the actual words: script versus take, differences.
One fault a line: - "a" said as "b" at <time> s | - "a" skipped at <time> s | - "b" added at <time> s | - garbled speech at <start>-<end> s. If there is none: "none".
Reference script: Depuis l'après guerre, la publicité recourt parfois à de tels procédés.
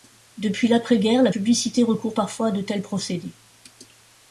none